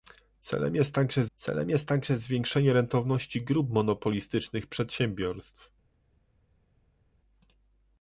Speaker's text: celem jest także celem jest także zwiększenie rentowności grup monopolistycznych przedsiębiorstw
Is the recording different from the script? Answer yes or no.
no